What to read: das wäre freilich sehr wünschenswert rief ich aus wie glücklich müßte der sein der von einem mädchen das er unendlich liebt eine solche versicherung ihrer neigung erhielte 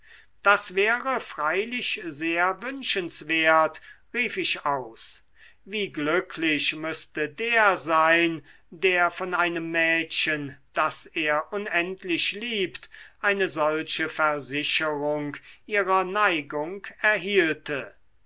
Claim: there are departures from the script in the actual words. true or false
false